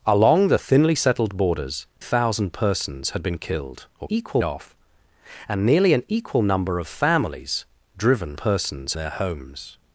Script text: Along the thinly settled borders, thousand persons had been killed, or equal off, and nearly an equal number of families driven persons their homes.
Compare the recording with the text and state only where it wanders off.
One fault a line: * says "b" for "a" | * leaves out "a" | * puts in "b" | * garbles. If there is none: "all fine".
all fine